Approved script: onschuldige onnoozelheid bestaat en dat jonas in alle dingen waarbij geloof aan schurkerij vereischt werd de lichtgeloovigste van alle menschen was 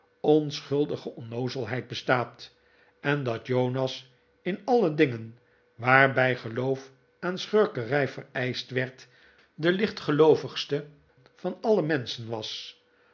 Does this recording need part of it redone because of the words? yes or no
no